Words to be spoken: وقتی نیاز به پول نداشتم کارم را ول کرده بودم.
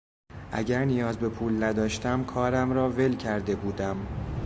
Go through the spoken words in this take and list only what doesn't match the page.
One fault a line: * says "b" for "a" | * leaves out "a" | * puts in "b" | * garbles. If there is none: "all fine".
* says "اگر" for "وقتی"